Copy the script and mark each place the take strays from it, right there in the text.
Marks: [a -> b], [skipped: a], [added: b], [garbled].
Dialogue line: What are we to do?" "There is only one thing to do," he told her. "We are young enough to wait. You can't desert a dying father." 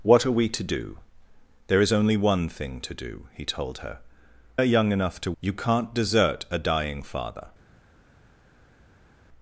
What are we to do?" "There is only one thing to do," he told her. [skipped: "We] are young enough to [skipped: wait.] You can't desert a dying father."